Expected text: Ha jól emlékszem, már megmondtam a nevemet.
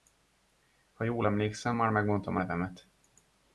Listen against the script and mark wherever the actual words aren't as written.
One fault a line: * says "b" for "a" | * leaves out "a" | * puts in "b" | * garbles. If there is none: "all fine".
all fine